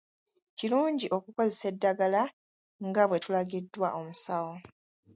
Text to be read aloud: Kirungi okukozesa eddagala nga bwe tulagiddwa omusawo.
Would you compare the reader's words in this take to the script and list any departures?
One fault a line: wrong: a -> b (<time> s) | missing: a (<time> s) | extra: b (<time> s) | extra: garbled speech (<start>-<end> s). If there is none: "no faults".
no faults